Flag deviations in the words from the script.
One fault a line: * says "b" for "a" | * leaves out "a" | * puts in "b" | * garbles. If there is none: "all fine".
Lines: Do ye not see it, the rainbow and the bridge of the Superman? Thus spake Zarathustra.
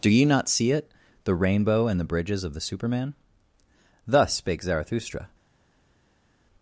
* says "bridges" for "bridge"